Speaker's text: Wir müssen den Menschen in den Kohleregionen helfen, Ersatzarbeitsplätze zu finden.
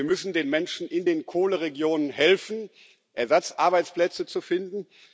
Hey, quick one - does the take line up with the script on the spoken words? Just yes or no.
yes